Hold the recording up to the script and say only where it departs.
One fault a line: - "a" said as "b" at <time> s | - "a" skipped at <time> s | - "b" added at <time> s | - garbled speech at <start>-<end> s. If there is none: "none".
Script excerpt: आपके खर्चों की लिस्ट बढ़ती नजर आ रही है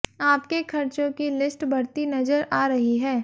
none